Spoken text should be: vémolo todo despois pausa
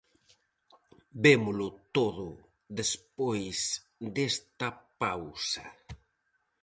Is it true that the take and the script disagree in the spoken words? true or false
true